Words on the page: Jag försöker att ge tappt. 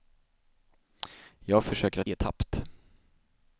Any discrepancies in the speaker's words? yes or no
no